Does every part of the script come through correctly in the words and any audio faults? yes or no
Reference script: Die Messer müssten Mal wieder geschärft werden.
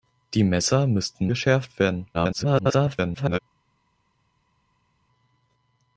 no